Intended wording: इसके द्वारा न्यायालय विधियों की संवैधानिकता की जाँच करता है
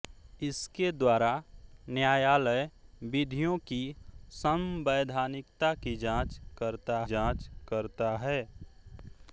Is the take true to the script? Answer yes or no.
no